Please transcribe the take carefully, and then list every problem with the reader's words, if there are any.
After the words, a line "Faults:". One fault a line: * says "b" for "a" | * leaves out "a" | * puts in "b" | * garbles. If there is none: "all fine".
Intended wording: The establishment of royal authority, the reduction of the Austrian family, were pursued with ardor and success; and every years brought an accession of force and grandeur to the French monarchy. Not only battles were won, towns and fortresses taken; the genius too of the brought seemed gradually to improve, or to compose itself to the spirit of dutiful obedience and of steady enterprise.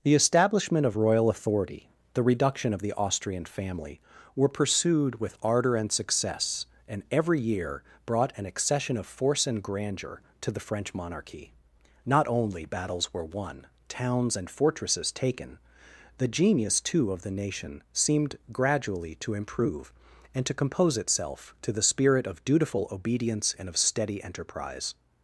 The establishment of royal authority, the reduction of the Austrian family, were pursued with ardor and success; and every year brought an accession of force and grandeur to the French monarchy. Not only battles were won, towns and fortresses taken; the genius too of the nation seemed gradually to improve, and to compose itself to the spirit of dutiful obedience and of steady enterprise.
Faults:
* says "year" for "years"
* says "nation" for "brought"
* says "and" for "or"